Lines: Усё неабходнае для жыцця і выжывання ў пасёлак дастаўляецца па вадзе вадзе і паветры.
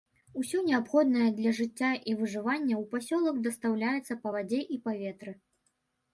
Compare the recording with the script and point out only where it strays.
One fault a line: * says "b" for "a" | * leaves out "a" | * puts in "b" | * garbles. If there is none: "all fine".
* leaves out "вадзе"